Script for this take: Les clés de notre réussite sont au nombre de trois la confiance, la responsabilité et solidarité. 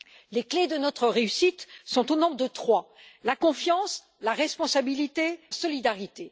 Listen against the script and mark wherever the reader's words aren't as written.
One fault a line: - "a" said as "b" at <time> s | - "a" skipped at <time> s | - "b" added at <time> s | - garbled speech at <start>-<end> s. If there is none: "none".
none